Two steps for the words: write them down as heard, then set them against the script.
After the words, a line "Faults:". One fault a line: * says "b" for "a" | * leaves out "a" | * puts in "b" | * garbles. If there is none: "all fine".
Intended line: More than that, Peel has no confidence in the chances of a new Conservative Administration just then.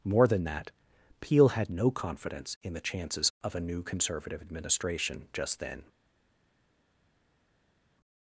More than that, Peel had no confidence in the chances of a new Conservative Administration just then.
Faults:
* says "had" for "has"